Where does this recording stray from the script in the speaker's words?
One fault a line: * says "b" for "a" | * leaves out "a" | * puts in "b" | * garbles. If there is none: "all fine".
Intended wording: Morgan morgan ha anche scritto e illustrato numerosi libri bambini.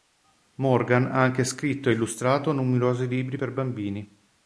* leaves out "morgan"
* puts in "per"